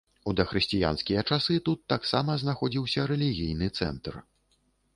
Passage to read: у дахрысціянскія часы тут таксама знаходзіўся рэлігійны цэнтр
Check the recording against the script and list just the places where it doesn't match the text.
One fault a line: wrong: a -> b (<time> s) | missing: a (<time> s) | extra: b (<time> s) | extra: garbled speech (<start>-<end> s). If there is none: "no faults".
no faults